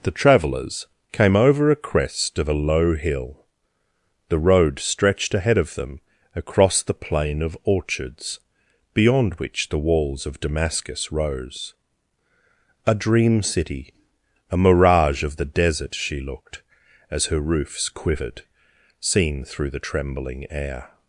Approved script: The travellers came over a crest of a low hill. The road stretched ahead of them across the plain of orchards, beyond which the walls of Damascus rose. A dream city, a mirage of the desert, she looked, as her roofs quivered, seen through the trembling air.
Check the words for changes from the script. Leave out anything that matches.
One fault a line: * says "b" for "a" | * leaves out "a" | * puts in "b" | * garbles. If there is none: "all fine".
all fine